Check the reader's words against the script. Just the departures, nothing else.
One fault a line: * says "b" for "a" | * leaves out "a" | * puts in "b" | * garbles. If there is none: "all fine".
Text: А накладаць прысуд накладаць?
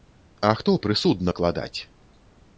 * says "хто" for "накладаць"